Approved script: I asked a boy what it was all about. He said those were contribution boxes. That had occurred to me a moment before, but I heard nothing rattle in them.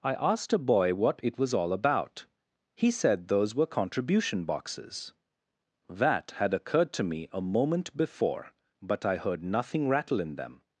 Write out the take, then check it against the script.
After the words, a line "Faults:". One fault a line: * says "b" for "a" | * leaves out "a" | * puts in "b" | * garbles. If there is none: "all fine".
I asked a boy what it was all about. He said those were contribution boxes. That had occurred to me a moment before, but I heard nothing rattle in them.
Faults:
all fine